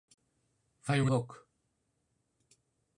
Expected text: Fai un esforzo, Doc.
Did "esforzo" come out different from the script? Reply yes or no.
yes